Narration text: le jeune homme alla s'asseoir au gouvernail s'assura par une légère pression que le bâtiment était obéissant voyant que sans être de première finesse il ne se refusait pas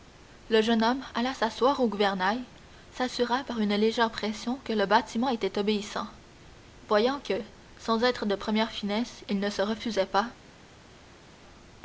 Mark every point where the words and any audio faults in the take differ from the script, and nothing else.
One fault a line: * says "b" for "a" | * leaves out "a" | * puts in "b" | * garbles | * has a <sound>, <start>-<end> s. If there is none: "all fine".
all fine